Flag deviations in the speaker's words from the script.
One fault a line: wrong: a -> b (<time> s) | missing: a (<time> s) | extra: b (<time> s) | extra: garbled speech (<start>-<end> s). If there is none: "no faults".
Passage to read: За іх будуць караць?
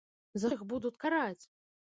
no faults